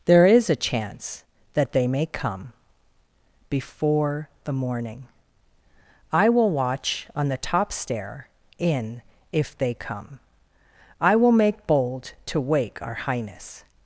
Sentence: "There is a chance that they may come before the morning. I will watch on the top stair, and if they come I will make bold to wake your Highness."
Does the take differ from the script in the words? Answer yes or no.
yes